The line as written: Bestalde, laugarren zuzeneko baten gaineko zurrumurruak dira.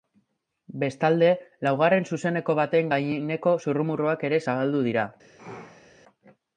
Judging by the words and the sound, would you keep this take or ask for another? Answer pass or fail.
fail